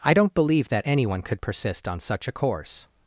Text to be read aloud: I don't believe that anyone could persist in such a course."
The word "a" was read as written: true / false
true